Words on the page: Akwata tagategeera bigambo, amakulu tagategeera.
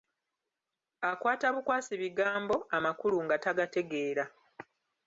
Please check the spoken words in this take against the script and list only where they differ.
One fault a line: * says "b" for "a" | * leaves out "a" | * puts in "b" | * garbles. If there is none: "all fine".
* says "bukwasi" for "tagategeera"
* puts in "nga"